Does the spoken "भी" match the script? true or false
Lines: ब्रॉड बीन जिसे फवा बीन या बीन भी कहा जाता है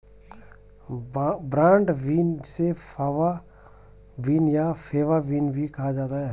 true